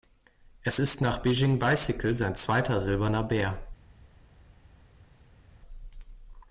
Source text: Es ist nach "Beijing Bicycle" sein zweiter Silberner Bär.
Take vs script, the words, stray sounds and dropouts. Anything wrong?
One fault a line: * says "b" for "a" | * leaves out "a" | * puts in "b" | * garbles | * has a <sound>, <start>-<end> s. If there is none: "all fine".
all fine